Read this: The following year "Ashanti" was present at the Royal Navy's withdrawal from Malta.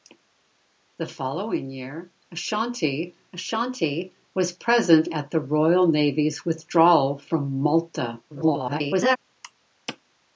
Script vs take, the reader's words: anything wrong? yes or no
yes